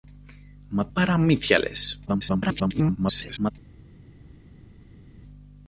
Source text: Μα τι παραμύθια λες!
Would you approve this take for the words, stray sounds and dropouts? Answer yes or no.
no